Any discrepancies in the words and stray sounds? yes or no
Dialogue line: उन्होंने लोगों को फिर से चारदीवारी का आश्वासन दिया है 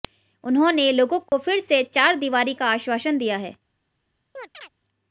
yes